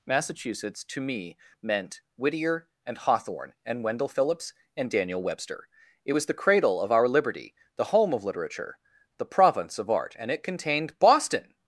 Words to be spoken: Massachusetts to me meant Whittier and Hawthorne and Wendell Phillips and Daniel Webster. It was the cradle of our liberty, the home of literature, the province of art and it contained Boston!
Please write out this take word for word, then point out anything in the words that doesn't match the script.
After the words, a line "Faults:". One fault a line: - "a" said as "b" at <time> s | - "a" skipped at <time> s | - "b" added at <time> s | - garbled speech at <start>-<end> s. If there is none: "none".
Massachusetts to me meant Whittier and Hawthorne and Wendell Phillips and Daniel Webster. It was the cradle of our liberty, the home of literature, the province of art and it contained Boston!
Faults:
none